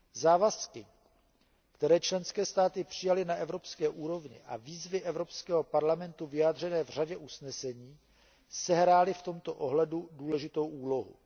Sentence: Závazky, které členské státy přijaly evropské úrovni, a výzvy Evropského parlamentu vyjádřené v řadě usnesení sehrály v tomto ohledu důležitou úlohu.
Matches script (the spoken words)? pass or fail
fail